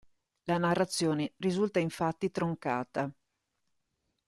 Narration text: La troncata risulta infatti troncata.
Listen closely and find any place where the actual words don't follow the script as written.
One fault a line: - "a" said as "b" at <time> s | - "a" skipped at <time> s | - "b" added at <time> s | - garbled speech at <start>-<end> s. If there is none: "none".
- "troncata" said as "narrazione" at 0.6 s